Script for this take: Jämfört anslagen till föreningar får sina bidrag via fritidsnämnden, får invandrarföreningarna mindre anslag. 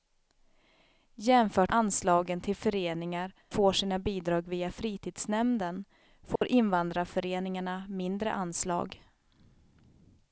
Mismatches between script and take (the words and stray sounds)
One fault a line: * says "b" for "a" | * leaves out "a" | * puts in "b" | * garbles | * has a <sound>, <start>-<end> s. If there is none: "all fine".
* has a dropout, 6.4-6.4 s